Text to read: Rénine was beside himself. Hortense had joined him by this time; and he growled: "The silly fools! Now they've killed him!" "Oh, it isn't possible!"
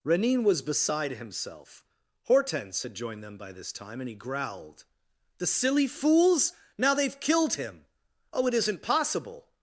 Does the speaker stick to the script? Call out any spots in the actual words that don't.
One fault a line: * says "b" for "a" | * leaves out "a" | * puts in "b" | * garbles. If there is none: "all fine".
* says "them" for "him"